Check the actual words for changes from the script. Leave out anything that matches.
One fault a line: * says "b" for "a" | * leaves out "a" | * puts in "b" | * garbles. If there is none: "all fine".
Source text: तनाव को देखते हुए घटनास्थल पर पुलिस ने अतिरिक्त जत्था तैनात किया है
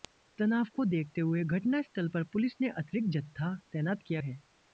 all fine